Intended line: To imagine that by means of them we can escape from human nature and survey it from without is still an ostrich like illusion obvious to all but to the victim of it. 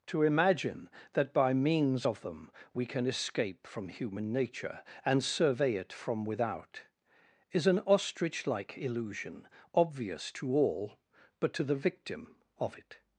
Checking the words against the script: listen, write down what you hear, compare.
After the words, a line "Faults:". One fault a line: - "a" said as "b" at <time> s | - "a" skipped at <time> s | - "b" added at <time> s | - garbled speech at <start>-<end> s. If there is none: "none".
To imagine that by means of them we can escape from human nature and survey it from without is an ostrich like illusion obvious to all but to the victim of it.
Faults:
- "still" skipped at 7.7 s